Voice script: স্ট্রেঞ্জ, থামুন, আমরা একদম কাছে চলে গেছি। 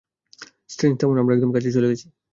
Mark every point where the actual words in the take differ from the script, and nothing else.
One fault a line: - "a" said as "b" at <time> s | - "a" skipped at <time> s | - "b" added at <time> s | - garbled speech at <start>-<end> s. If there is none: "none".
none